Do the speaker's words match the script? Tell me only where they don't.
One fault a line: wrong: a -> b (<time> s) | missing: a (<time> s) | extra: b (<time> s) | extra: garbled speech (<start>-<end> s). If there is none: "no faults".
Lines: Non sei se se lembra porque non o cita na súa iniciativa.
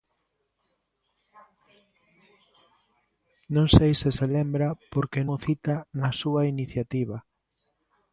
missing: non (5.2 s)